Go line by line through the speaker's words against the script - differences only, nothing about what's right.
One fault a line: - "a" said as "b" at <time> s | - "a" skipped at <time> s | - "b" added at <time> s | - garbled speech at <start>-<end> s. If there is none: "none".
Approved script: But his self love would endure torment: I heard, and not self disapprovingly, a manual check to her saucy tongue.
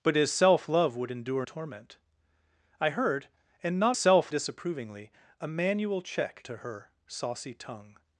none